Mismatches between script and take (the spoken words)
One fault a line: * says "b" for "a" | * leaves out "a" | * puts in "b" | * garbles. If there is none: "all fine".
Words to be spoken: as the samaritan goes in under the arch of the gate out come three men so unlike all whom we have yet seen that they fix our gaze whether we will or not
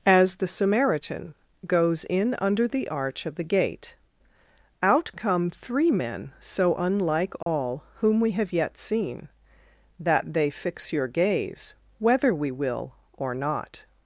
* says "your" for "our"